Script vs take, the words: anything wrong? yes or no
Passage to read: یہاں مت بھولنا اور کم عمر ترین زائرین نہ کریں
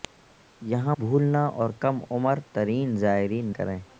yes